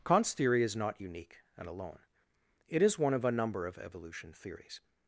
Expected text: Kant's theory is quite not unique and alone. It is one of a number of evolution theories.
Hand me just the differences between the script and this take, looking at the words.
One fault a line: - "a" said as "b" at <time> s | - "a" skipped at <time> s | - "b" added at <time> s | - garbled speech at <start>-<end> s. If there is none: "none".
- "quite" skipped at 0.8 s